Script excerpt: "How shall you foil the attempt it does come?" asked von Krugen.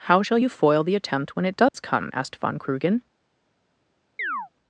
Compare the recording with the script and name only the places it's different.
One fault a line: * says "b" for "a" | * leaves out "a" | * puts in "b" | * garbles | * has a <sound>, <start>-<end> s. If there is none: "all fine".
* puts in "when"
* has a dropout, 1.7-1.7 s
* has a chirp, 4.2-4.5 s